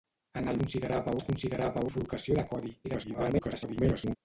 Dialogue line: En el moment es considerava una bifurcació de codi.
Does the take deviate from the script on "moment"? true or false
true